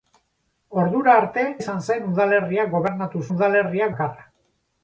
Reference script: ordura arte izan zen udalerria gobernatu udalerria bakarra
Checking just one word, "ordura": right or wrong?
right